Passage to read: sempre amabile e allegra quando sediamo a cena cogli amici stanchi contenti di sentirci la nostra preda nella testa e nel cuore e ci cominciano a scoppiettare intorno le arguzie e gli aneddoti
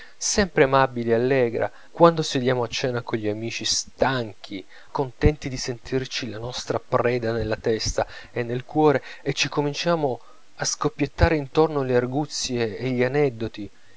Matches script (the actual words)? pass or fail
pass